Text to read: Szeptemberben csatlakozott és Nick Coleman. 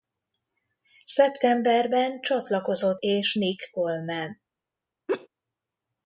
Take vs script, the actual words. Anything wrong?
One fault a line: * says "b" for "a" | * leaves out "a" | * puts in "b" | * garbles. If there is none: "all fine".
all fine